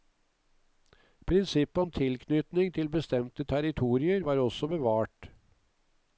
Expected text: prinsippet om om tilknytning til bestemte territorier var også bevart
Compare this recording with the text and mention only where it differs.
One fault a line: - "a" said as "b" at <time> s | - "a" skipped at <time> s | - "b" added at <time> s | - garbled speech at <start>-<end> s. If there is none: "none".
- "om" skipped at 1.9 s